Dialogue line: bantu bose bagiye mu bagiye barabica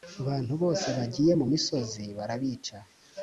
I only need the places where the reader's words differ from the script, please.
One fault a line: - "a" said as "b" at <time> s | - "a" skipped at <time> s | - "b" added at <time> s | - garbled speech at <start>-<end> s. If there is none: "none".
- "bagiye" said as "misozi" at 1.5 s